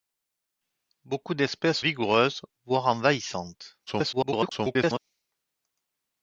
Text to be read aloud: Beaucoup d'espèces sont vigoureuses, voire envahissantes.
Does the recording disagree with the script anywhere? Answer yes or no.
yes